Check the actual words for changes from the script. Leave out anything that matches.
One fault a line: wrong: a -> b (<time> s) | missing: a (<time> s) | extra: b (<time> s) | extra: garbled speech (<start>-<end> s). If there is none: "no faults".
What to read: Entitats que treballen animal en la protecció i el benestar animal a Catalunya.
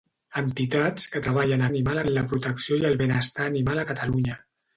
no faults